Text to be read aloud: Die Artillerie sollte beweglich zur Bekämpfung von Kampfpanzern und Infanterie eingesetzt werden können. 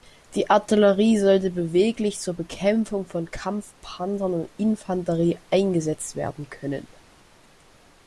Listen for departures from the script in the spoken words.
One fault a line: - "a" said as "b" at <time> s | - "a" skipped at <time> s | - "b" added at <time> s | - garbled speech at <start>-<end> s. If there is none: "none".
none